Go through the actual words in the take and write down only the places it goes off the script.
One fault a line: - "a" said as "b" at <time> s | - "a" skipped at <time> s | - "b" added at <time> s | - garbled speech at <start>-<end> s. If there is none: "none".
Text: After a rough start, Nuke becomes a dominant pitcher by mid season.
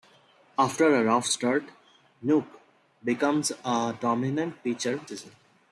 - "by mid" skipped at 5.0 s